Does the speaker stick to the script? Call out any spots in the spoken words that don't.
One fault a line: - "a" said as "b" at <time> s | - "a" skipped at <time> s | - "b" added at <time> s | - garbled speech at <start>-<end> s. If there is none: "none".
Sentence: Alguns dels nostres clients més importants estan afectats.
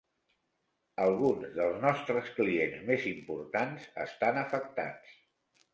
none